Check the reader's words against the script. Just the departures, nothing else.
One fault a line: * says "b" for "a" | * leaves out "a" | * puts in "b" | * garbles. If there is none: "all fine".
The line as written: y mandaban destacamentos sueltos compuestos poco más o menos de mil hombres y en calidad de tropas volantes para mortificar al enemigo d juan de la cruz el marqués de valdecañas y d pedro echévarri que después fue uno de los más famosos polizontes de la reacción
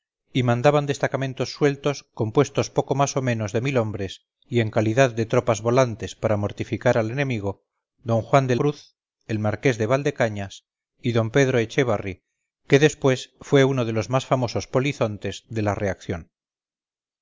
* leaves out "la"